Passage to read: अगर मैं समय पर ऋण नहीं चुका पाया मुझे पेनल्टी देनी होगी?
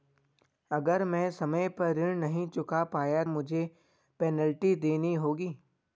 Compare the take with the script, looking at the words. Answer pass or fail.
pass